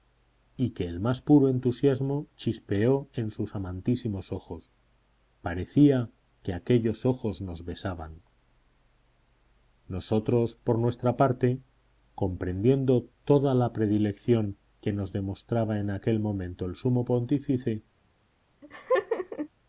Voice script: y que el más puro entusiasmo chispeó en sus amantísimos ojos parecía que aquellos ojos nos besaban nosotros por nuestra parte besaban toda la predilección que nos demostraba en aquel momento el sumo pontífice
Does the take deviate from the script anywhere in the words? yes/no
yes